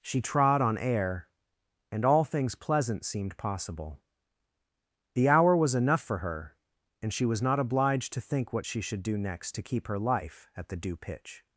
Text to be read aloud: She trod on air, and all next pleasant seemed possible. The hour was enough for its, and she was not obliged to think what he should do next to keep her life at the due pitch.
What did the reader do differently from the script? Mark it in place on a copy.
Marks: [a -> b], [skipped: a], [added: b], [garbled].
She trod on air, and all [next -> things] pleasant seemed possible. The hour was enough for [its, -> her] and she was not obliged to think what [he -> she] should do next to keep her life at the due pitch.